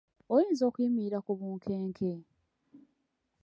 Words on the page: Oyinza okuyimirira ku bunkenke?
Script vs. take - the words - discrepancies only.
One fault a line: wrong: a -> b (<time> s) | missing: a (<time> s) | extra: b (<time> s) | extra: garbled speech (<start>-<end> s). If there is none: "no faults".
no faults